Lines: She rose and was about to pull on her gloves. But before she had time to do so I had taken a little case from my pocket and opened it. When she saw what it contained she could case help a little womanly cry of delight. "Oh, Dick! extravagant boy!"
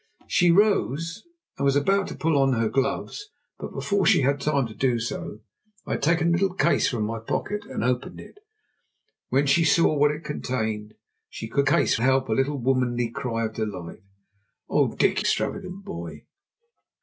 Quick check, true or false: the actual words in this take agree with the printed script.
true